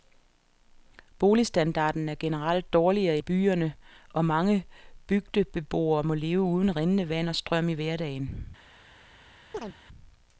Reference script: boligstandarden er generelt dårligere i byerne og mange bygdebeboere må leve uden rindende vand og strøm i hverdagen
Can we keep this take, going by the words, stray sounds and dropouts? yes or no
no